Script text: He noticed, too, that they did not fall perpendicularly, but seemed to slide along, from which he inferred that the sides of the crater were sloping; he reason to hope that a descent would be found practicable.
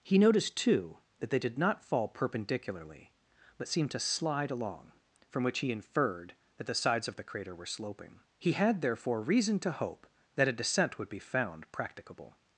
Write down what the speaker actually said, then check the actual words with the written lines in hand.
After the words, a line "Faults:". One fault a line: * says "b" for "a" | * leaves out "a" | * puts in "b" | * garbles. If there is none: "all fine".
He noticed, too, that they did not fall perpendicularly, but seemed to slide along, from which he inferred that the sides of the crater were sloping; he had therefore reason to hope that a descent would be found practicable.
Faults:
* puts in "had therefore"